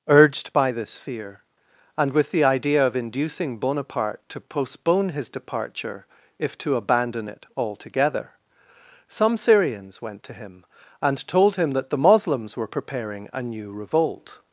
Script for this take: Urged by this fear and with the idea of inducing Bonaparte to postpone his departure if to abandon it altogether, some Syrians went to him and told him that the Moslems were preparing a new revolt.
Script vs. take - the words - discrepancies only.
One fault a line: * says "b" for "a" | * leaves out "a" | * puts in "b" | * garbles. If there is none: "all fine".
all fine